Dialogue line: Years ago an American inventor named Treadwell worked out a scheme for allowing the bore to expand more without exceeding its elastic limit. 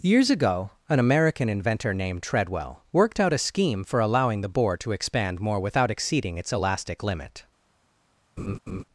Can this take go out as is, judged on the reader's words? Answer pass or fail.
pass